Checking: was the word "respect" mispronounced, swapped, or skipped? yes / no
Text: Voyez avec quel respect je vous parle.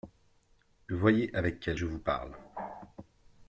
yes